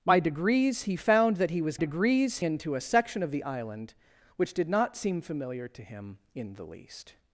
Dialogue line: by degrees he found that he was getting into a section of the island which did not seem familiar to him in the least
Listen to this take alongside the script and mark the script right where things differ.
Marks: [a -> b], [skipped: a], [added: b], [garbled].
by degrees he found that he was [getting -> degrees] into a section of the island which did not seem familiar to him in the least